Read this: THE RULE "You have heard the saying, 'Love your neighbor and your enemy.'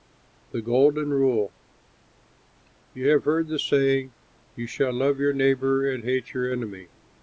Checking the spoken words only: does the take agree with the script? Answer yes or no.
no